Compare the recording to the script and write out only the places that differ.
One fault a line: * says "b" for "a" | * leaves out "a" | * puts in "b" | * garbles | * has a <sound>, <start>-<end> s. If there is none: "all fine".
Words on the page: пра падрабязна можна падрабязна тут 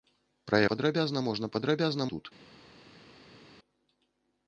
all fine